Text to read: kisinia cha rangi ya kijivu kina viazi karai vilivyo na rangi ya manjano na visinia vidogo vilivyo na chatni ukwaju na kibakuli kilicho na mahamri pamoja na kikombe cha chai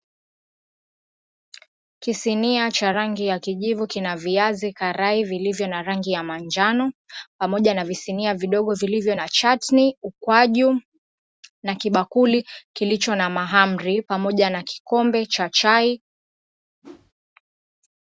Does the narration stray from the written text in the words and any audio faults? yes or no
yes